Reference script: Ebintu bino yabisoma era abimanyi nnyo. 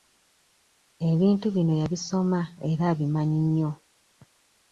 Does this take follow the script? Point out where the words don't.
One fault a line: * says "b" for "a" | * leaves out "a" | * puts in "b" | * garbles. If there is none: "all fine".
all fine